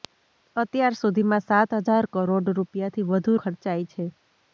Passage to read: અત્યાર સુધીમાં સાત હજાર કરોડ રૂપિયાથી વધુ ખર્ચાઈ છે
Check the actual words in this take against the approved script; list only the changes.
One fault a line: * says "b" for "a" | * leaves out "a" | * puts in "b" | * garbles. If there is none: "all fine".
all fine